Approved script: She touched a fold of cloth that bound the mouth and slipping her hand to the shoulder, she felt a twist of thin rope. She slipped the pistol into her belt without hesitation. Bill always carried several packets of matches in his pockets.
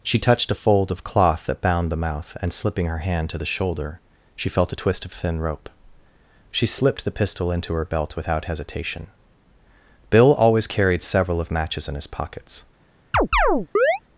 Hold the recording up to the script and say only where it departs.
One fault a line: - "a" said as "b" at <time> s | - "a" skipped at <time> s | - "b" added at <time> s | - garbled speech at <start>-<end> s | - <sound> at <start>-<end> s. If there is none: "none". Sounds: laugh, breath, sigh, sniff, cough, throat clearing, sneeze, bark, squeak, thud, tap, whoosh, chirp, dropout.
- "packets" skipped at 11.4 s
- chirp at 13.1-14.0 s